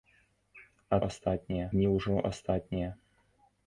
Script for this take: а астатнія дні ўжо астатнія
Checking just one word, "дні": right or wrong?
right